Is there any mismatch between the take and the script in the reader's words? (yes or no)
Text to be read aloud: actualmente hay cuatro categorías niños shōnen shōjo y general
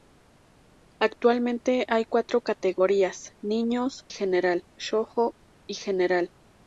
yes